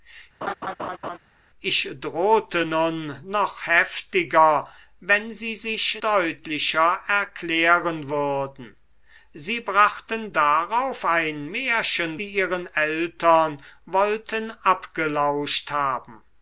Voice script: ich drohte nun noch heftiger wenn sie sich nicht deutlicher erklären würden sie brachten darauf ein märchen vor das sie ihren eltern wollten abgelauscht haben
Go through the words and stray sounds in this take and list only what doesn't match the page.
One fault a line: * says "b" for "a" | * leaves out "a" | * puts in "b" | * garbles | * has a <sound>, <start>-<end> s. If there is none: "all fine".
* has a laugh, 0.4-1.2 s
* leaves out "nicht"
* leaves out "vor das"